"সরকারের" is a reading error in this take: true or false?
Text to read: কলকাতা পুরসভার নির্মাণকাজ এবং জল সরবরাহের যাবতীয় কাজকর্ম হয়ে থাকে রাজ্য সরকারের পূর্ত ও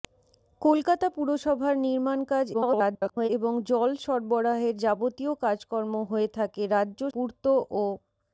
true